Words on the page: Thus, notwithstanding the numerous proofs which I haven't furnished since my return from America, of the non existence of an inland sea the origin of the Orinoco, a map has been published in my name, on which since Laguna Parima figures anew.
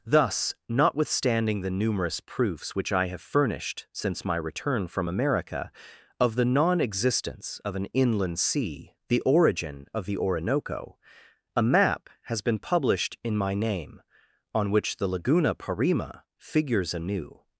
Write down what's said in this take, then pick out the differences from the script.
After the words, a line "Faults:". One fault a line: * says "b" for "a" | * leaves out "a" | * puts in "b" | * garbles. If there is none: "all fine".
Thus, notwithstanding the numerous proofs which I have furnished since my return from America, of the non existence of an inland sea the origin of the Orinoco, a map has been published in my name, on which the Laguna Parima figures anew.
Faults:
* says "have" for "haven't"
* says "the" for "since"